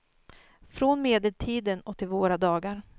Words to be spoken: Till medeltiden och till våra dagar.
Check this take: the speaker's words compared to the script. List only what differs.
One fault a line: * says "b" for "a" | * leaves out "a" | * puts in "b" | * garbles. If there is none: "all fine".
* says "Från" for "Till"